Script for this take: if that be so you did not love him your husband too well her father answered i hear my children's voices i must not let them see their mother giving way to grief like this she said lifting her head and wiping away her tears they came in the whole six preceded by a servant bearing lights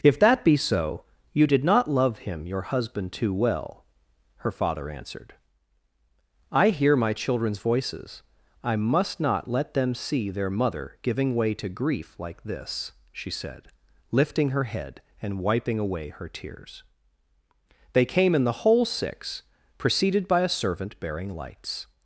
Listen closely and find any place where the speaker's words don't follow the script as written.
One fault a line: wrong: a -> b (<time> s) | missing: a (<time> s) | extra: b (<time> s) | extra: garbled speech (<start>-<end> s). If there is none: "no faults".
no faults